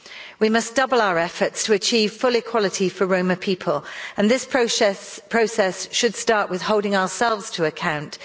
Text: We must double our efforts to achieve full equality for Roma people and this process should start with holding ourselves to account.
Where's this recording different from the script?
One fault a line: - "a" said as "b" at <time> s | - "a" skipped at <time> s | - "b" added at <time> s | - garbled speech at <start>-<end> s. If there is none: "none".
none